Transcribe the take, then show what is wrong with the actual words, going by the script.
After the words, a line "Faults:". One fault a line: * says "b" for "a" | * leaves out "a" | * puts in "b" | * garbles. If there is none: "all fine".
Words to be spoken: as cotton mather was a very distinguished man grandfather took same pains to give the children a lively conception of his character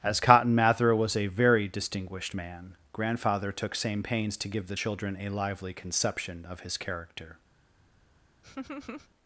as cotton mather was a very distinguished man grandfather took same pains to give the children a lively conception of his character
Faults:
all fine